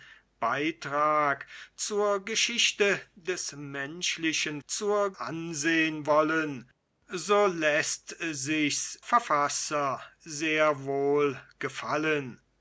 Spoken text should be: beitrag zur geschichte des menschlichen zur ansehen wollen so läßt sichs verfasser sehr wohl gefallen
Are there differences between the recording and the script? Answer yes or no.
no